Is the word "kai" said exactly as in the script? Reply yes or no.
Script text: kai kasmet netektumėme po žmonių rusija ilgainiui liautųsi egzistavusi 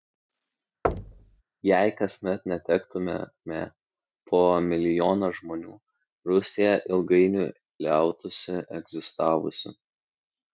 no